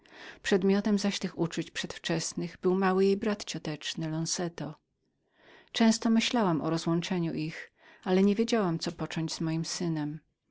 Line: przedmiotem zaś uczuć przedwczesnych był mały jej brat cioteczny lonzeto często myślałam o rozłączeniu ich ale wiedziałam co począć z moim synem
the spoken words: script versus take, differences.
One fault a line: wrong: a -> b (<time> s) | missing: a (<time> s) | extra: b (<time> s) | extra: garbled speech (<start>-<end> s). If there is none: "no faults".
extra: tych (1.2 s)
extra: nie (8.2 s)